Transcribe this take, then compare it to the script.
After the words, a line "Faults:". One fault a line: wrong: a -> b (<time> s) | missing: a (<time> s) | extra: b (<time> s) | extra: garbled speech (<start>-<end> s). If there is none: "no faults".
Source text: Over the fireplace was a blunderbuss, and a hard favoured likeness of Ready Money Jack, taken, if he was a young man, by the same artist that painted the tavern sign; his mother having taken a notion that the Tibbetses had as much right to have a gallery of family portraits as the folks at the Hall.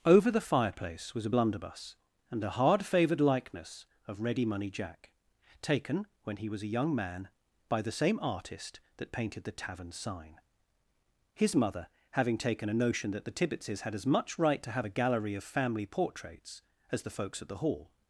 Over the fireplace was a blunderbuss, and a hard favoured likeness of Ready Money Jack, taken, when he was a young man, by the same artist that painted the tavern sign; his mother having taken a notion that the Tibbetses had as much right to have a gallery of family portraits as the folks at the Hall.
Faults:
wrong: if -> when (6.2 s)